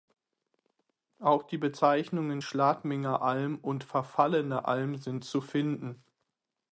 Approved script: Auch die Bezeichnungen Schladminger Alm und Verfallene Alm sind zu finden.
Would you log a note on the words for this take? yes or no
no